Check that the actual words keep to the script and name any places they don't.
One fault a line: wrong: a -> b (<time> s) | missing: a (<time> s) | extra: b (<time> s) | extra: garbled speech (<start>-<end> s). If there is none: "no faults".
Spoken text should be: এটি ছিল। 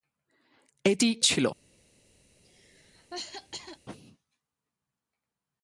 no faults